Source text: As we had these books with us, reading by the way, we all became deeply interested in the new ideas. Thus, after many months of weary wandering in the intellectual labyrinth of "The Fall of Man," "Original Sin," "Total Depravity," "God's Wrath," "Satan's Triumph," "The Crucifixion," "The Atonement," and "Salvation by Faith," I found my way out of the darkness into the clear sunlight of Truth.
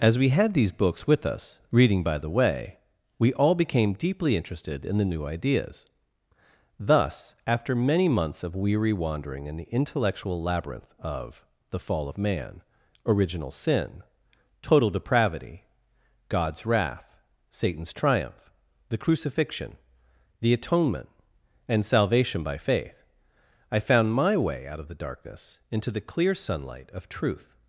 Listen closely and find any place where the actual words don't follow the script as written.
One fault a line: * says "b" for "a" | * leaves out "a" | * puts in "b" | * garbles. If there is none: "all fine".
all fine